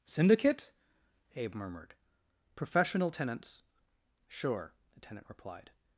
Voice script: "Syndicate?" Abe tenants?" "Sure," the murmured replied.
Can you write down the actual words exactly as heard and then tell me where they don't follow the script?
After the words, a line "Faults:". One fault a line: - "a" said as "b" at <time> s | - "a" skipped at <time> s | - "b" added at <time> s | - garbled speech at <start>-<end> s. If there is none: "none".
"Syndicate?" Abe murmured. "Professional tenants?" "Sure," the tenant replied.
Faults:
- "murmured Professional" added at 1.6 s
- "murmured" said as "tenant" at 5.0 s